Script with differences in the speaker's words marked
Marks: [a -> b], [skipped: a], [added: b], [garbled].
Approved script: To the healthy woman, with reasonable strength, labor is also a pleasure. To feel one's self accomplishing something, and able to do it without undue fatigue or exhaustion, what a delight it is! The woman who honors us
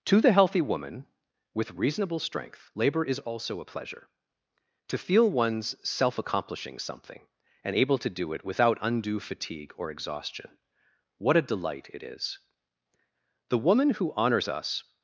To the healthy woman, with reasonable strength, labor is also a pleasure. To feel one's self accomplishing something, and able to do it without undue fatigue or exhaustion, what a delight it is! The woman who honors us